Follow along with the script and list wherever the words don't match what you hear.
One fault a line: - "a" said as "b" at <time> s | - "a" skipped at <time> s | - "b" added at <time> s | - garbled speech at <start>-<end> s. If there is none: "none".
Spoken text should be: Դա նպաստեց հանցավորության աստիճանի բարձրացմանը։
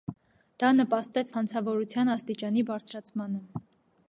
none